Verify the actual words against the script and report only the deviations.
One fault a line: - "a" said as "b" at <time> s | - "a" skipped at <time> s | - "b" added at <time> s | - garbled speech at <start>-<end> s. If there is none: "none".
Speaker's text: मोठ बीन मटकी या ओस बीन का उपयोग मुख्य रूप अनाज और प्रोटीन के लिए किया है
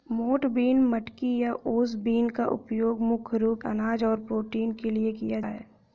none